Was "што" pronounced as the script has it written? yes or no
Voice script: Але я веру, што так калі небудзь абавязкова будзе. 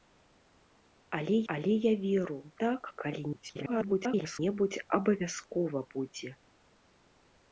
no